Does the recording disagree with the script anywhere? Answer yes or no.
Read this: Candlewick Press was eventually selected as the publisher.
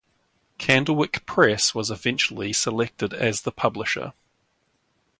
no